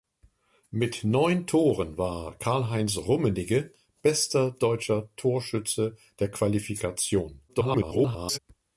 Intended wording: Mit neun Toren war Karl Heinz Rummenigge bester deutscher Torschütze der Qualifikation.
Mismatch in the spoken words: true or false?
true